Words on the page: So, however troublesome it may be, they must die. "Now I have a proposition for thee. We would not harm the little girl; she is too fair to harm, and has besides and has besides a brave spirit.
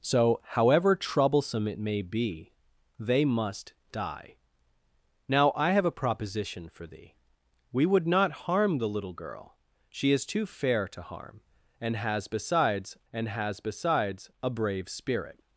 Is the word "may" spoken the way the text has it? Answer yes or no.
yes